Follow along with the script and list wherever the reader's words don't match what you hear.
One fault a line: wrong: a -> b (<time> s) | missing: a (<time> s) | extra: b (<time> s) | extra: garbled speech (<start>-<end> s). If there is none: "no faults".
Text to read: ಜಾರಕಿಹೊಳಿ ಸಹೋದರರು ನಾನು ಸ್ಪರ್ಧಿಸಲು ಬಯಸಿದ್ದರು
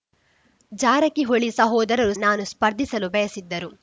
no faults